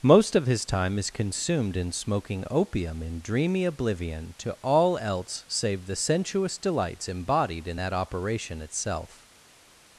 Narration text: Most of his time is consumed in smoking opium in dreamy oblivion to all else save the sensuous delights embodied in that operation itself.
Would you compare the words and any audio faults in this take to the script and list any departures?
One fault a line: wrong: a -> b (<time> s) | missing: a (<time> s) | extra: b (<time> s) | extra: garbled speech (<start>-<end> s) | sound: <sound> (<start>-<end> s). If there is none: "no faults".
no faults